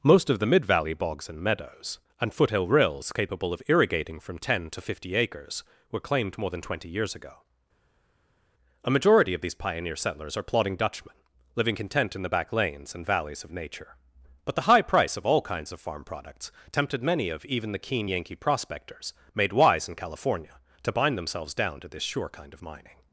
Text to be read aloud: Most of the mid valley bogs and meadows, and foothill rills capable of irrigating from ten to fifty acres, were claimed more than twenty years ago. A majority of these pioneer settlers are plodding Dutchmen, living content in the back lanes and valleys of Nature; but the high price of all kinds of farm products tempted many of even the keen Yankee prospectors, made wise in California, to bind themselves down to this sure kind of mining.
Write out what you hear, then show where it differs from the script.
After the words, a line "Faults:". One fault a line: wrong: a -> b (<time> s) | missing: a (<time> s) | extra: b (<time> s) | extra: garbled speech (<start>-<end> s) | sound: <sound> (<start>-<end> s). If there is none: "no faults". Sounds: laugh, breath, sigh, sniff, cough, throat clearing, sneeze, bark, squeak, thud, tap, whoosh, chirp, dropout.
Most of the mid valley bogs and meadows, and foothill rills capable of irrigating from ten to fifty acres, were claimed more than twenty years ago. A majority of these pioneer settlers are plodding Dutchmen, living content in the back lanes and valleys of Nature; but the high price of all kinds of farm products tempted many of even the keen Yankee prospectors, made wise in California, to bind themselves down to this sure kind of mining.
Faults:
no faults